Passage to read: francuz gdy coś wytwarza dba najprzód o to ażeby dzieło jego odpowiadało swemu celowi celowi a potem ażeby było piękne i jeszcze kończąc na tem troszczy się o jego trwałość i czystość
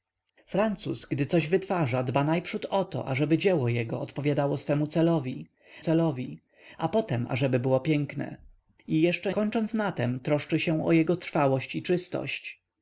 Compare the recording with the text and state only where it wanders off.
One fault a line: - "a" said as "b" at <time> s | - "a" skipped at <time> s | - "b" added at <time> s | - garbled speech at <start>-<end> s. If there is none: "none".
none